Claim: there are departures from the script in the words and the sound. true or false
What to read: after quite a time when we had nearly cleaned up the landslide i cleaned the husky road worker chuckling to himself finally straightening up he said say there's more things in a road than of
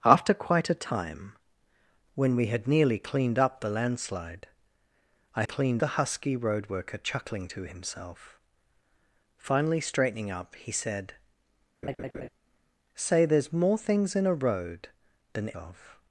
true